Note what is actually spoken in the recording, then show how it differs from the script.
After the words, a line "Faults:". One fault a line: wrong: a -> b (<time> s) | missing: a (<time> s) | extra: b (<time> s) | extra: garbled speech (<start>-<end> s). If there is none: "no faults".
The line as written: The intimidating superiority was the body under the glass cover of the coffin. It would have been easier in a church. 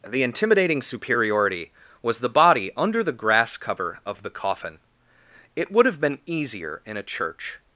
The intimidating superiority was the body under the grass cover of the coffin. It would have been easier in a church.
Faults:
wrong: glass -> grass (3.1 s)